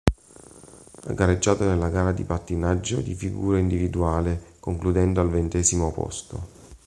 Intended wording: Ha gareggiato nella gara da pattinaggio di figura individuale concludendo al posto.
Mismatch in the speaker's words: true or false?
true